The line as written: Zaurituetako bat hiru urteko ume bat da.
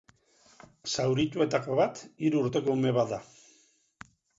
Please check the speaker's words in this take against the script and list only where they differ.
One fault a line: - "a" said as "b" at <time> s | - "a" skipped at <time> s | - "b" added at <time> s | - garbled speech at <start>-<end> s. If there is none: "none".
none